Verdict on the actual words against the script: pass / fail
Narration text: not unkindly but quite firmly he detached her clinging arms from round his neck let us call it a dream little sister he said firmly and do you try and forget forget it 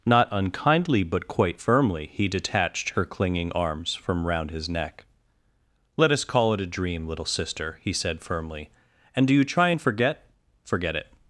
pass